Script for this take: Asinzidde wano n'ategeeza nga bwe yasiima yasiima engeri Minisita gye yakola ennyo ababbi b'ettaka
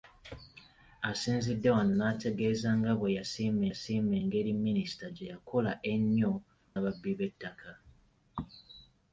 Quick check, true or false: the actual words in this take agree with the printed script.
true